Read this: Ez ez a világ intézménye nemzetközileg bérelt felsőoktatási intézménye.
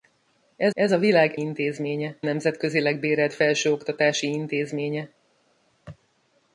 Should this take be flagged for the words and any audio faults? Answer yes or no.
no